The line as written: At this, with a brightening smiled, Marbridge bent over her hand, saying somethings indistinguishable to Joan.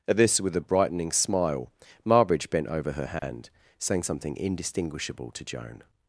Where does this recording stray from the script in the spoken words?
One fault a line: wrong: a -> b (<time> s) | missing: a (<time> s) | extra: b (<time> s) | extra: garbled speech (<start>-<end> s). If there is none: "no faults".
wrong: smiled -> smile (1.1 s)
wrong: somethings -> something (4.0 s)